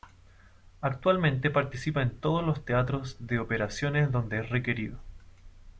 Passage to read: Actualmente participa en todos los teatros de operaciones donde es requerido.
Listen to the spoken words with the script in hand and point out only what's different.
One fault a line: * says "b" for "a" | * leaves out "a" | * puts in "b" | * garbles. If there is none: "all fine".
all fine